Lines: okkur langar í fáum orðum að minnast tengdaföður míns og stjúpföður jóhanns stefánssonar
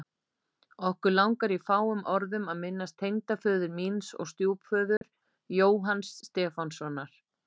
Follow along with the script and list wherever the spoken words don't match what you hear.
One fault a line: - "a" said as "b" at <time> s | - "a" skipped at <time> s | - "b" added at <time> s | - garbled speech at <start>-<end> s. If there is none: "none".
none